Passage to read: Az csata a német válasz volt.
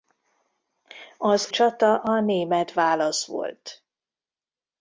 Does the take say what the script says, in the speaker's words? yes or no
yes